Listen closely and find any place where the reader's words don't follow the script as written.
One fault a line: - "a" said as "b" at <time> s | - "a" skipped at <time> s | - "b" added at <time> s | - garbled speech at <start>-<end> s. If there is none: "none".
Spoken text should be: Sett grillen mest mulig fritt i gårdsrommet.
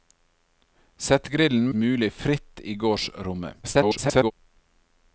- "mest" skipped at 1.7 s
- garbled speech at 3.6-4.3 s